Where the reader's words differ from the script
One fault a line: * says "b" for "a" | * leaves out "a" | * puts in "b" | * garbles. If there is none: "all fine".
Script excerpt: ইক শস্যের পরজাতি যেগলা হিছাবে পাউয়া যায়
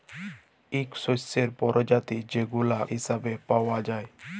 all fine